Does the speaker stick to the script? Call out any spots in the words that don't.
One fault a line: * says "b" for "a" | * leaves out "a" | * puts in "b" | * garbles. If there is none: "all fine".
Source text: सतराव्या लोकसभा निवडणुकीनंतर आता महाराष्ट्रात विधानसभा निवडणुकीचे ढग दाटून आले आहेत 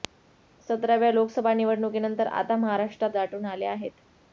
* leaves out "विधानसभा निवडणुकीचे ढग"